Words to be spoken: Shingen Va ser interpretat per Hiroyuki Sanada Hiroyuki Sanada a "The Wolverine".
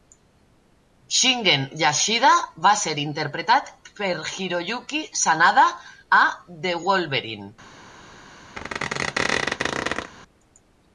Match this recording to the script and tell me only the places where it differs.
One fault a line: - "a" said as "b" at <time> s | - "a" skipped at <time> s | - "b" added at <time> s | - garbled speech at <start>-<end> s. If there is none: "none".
- "Yashida" added at 1.8 s
- "Hiroyuki Sanada" skipped at 5.7 s